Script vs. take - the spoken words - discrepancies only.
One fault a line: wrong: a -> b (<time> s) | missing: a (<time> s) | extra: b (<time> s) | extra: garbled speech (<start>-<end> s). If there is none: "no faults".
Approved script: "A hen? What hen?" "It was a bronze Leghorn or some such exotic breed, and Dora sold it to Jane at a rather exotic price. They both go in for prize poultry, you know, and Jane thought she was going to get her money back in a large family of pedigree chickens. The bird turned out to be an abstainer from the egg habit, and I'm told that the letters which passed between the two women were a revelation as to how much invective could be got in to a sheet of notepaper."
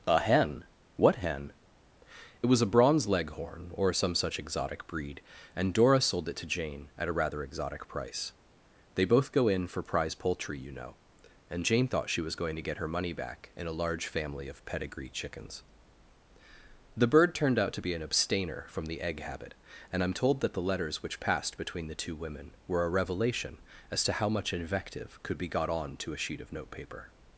wrong: in -> on (25.7 s)